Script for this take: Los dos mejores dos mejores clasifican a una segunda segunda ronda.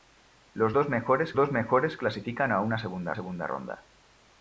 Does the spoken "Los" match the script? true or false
true